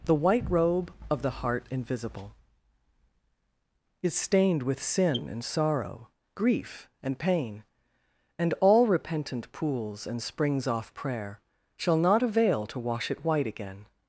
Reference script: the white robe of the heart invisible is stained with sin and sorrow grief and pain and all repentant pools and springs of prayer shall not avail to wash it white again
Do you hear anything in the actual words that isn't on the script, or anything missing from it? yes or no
yes